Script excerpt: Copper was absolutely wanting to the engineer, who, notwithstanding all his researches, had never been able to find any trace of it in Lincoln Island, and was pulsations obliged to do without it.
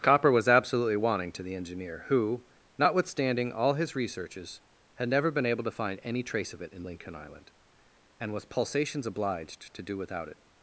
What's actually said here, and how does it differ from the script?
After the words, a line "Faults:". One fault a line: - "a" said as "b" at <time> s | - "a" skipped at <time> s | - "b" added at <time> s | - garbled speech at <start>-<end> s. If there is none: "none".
Copper was absolutely wanting to the engineer, who, notwithstanding all his researches, had never been able to find any trace of it in Lincoln Island, and was pulsations obliged to do without it.
Faults:
none